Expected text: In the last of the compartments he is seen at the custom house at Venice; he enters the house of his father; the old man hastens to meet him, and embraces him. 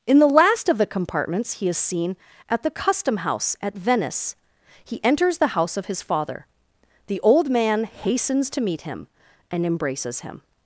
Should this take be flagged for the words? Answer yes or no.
no